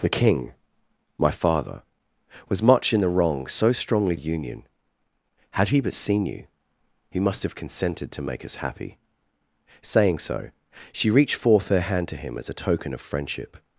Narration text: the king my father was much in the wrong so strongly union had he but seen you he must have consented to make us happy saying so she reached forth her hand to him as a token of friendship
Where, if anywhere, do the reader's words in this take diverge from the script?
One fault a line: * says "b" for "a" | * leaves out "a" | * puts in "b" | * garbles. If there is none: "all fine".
all fine